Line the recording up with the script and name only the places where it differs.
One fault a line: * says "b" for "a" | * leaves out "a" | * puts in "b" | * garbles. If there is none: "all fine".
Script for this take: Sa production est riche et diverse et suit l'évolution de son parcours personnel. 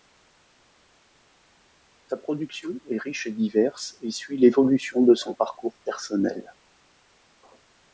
all fine